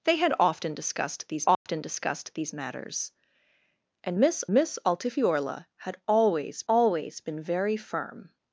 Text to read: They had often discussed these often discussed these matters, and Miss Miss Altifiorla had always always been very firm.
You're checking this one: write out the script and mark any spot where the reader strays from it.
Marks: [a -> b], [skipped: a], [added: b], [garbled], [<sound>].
They had often discussed these often [dropout] discussed these matters, and Miss Miss Altifiorla had always always been very firm.